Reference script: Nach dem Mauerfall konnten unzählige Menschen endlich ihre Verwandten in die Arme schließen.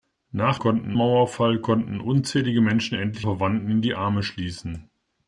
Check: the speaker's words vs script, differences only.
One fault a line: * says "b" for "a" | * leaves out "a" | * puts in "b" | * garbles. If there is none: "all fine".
* says "konnten" for "dem"
* leaves out "ihre"